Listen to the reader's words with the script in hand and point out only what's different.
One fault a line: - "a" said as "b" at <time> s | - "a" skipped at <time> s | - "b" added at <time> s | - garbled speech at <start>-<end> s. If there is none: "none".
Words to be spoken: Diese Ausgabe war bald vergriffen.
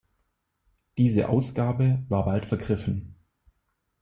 none